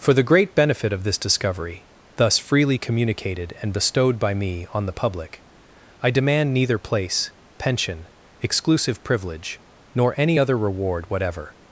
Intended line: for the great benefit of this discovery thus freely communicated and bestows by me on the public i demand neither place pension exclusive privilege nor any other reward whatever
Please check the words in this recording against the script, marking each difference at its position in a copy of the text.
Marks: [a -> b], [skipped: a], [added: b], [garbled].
for the great benefit of this discovery thus freely communicated and [bestows -> bestowed] by me on the public i demand neither place pension exclusive privilege nor any other reward whatever